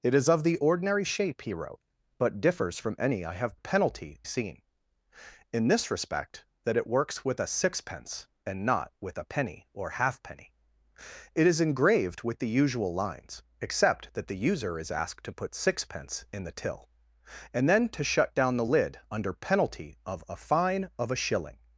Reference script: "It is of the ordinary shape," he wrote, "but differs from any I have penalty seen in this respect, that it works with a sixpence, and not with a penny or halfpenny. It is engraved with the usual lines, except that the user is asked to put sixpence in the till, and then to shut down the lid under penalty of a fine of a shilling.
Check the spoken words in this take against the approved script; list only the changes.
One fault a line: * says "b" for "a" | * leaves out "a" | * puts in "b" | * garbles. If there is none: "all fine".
all fine